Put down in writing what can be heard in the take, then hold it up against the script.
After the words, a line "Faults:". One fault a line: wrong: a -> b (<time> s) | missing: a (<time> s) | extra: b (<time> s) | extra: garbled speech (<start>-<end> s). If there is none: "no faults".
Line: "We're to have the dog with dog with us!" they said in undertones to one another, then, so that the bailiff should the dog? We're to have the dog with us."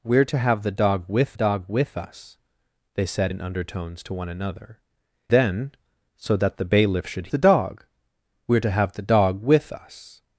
"We're to have the dog with dog with us!" they said in undertones to one another, then, so that the bailiff should the dog? We're to have the dog with us."
Faults:
no faults